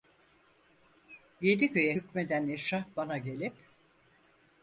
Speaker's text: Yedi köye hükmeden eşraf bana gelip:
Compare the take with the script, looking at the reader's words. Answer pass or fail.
pass